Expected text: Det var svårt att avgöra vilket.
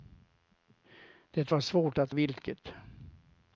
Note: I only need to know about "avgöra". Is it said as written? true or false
false